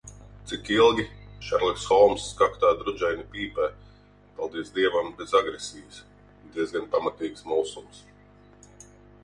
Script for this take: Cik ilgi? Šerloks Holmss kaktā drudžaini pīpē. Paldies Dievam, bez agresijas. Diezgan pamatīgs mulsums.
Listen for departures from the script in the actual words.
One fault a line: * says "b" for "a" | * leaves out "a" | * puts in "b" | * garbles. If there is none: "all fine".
all fine